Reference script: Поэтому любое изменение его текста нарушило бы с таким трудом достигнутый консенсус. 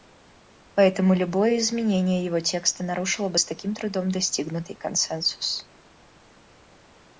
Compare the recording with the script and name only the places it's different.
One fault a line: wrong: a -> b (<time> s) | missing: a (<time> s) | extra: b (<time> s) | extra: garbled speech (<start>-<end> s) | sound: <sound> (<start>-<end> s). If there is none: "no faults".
no faults